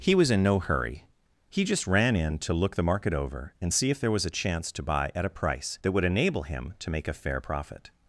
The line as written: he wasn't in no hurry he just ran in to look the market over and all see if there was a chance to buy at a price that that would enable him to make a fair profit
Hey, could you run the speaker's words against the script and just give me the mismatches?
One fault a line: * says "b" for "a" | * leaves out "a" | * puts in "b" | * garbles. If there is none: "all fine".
* says "was" for "wasn't"
* leaves out "all"
* leaves out "that"